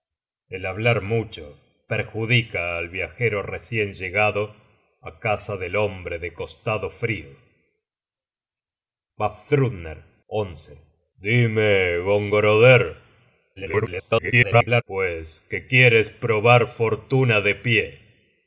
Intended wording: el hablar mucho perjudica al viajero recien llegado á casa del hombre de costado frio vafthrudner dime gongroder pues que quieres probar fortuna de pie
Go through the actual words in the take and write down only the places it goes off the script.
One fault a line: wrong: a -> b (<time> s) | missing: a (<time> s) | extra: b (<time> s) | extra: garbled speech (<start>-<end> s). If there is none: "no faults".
extra: garbled speech (13.6-14.8 s)